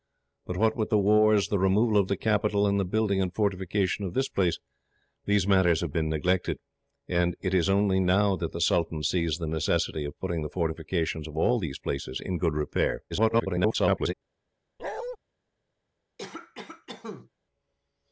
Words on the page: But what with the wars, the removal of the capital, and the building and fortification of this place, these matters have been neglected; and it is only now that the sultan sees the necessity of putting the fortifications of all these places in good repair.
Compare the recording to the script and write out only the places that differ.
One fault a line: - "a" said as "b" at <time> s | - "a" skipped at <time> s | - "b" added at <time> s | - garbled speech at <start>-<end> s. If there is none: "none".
- garbled speech at 13.1-14.1 s